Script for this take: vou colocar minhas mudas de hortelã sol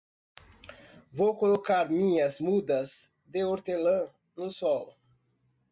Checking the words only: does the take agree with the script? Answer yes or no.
no